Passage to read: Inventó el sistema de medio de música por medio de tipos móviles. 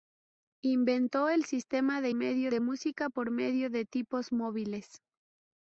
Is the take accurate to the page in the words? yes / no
yes